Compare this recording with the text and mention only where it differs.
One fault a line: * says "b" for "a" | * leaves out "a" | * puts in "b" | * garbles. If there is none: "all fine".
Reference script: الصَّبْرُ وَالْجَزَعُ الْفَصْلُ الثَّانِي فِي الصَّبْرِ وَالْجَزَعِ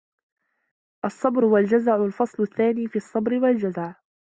all fine